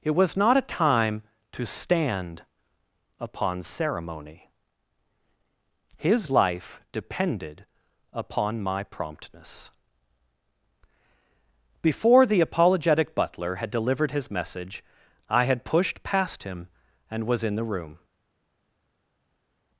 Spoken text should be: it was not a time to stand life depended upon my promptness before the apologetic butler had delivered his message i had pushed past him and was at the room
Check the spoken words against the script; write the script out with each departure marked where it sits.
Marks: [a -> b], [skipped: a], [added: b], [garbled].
it was not a time to stand [added: upon ceremony his] life depended upon my promptness before the apologetic butler had delivered his message i had pushed past him and was [at -> in] the room